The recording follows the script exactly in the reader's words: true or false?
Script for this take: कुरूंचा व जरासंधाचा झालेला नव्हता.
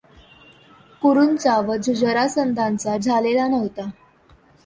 true